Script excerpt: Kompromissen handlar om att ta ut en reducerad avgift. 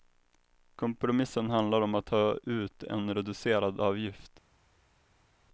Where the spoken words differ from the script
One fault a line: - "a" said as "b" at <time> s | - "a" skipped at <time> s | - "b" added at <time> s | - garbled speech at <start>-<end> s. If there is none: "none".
none